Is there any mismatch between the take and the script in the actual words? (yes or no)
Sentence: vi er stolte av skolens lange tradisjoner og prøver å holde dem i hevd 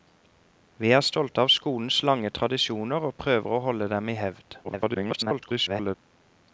yes